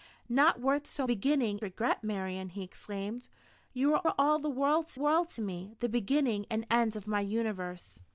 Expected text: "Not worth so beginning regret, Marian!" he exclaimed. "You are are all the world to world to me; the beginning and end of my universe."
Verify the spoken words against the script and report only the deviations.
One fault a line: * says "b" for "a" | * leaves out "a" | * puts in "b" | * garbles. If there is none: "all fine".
all fine